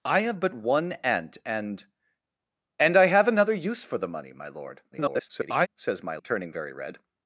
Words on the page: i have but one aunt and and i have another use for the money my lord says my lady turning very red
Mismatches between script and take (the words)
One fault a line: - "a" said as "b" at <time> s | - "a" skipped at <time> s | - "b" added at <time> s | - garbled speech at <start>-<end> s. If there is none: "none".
- garbled speech at 4.9-5.7 s
- "lady" skipped at 6.2 s